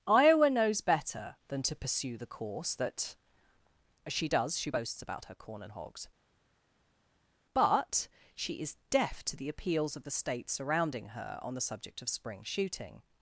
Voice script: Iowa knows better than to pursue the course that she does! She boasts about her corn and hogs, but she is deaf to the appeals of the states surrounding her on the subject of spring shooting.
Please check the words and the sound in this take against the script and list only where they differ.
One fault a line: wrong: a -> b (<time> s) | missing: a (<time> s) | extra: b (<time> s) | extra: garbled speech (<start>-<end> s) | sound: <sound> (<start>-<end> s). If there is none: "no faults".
no faults